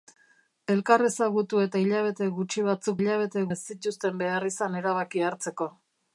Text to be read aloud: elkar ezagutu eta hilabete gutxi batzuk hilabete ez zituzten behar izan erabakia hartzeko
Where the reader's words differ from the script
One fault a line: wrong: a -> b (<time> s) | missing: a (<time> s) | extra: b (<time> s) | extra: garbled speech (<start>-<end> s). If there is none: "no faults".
no faults